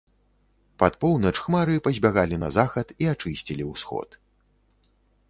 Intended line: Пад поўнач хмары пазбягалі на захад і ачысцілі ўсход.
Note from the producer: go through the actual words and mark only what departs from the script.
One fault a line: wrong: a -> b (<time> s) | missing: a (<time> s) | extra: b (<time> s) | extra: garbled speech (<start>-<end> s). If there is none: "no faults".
no faults